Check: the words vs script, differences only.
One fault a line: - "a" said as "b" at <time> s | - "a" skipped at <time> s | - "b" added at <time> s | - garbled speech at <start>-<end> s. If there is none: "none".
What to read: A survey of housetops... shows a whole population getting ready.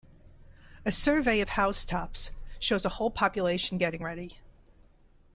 none